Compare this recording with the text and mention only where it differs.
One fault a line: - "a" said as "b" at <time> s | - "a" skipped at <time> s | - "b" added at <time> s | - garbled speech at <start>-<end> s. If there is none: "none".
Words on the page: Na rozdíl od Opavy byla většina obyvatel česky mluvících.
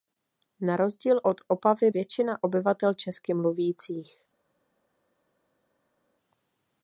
- "byla" skipped at 1.9 s